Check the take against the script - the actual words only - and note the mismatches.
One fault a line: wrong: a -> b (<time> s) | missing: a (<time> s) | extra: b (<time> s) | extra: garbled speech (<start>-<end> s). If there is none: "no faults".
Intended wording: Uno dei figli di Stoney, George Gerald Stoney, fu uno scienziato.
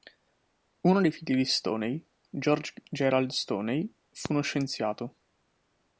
no faults